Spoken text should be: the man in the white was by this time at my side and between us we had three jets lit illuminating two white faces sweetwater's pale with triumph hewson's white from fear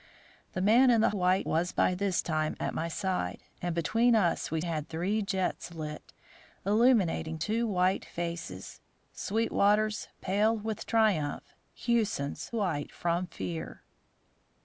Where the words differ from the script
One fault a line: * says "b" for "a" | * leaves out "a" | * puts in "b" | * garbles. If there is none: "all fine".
all fine